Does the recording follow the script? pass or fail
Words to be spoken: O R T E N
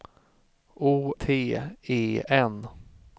fail